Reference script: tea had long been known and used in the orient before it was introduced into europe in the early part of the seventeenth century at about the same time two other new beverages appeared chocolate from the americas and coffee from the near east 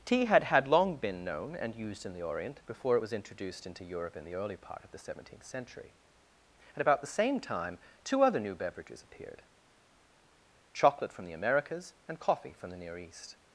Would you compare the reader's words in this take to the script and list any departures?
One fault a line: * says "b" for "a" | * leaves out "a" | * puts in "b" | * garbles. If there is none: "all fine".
* puts in "had"